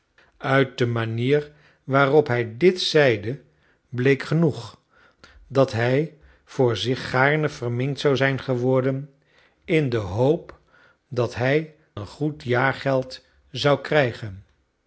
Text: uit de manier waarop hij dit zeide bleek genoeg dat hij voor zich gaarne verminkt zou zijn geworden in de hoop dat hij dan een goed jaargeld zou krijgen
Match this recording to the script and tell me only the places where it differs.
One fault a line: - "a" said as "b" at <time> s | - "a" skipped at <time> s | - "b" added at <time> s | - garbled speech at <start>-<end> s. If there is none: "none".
- "dan" skipped at 11.8 s